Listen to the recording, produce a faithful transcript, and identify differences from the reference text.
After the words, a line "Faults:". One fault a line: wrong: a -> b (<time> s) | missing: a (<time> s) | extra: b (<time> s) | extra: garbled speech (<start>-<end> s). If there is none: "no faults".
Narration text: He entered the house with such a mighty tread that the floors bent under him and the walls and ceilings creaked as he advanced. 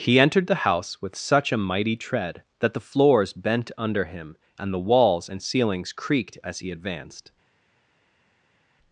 He entered the house with such a mighty tread that the floors bent under him and the walls and ceilings creaked as he advanced.
Faults:
no faults